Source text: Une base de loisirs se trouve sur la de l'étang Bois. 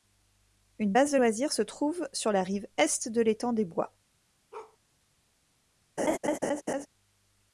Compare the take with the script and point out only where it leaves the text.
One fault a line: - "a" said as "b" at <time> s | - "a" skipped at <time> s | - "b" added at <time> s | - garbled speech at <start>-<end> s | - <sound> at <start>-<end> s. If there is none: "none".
- "rive Est" added at 2.4 s
- "des" added at 3.5 s
- bark at 4.5-4.8 s
- laugh at 6.0-6.9 s